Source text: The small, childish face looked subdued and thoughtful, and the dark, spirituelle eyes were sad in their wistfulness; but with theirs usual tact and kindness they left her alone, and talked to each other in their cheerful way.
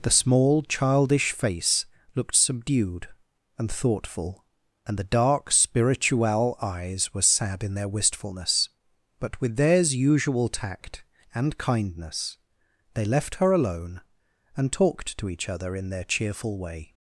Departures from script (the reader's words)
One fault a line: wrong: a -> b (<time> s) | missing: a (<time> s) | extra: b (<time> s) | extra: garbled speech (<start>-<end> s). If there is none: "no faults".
no faults